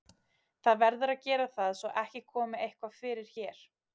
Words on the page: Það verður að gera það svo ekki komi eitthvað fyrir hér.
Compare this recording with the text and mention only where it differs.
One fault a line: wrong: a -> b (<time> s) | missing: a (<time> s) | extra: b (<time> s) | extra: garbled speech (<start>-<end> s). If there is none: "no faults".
no faults